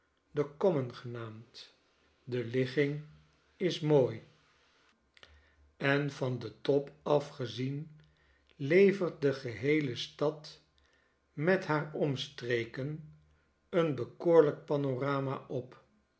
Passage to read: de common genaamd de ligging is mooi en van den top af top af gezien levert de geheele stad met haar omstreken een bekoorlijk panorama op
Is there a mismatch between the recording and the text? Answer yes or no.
yes